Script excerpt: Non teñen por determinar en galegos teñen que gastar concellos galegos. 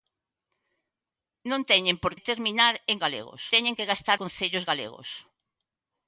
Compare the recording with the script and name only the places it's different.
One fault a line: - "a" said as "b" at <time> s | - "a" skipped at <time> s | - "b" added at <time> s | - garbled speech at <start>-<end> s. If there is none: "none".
none